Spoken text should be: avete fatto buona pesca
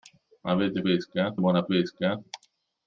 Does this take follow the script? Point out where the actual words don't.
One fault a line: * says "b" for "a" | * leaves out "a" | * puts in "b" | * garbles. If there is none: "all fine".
* says "pesca" for "fatto"